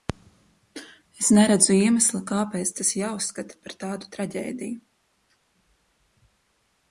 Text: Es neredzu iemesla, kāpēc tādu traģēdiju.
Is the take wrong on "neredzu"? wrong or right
right